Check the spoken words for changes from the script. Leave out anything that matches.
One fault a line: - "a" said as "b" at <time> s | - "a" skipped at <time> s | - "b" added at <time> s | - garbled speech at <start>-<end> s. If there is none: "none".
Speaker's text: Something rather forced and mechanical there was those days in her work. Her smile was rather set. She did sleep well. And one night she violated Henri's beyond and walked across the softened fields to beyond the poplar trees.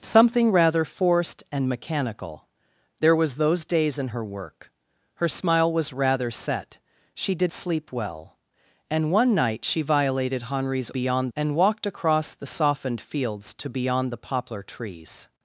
none